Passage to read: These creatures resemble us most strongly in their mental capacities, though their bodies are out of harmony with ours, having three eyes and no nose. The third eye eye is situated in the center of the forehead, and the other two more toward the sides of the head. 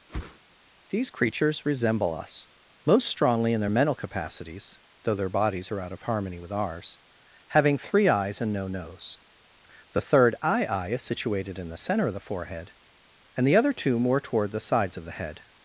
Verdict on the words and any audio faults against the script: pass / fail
fail